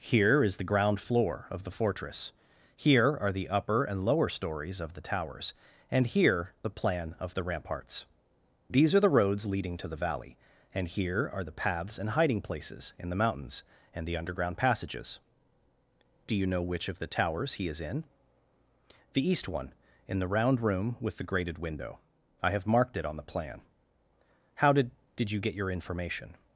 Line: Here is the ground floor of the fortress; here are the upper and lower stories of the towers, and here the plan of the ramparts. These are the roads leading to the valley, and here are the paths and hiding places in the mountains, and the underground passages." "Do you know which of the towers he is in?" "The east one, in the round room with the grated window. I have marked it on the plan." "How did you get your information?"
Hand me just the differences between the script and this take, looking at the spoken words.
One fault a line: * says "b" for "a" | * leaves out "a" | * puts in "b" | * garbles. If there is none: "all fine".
* puts in "did"